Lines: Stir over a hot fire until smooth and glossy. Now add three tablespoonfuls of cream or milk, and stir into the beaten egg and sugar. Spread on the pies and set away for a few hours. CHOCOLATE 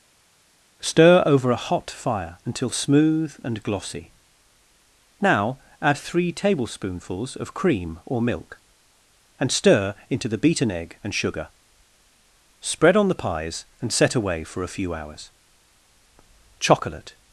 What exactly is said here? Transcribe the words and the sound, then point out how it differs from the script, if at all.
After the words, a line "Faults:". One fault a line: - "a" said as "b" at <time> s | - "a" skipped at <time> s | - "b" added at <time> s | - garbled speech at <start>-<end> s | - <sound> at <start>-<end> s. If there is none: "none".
Stir over a hot fire until smooth and glossy. Now add three tablespoonfuls of cream or milk, and stir into the beaten egg and sugar. Spread on the pies and set away for a few hours. CHOCOLATE
Faults:
none